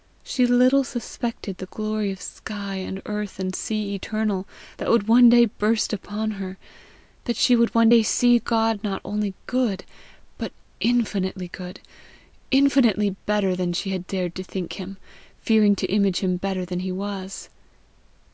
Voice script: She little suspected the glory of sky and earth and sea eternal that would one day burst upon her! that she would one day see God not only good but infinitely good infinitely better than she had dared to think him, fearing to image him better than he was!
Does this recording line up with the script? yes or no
yes